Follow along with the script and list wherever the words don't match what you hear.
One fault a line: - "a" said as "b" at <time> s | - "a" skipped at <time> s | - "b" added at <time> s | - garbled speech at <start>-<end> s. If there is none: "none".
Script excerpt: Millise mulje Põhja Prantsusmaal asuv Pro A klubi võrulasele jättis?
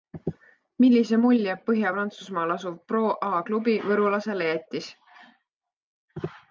none